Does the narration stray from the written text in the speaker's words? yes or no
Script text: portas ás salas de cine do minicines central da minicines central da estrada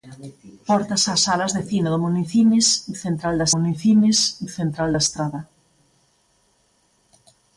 no